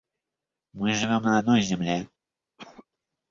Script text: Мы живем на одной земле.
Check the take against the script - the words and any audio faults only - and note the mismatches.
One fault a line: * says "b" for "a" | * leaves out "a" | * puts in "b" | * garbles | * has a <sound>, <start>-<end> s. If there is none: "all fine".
* has a cough, 2.6-2.9 s